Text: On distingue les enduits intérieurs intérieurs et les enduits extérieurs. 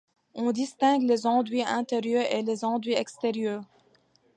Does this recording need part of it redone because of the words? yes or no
yes